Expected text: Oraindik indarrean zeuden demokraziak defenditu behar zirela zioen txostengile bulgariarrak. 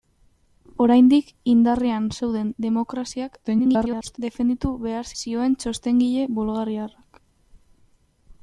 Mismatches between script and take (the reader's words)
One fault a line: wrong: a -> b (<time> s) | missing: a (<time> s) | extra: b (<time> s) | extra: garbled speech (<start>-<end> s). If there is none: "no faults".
extra: garbled speech (3.4-4.2 s)
missing: zirela (5.1 s)